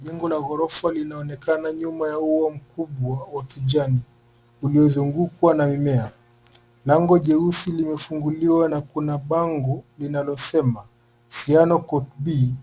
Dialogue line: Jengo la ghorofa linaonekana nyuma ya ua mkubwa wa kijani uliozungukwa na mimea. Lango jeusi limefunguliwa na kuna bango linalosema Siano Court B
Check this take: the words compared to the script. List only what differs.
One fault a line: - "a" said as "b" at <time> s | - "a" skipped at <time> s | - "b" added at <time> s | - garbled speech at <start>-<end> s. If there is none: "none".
none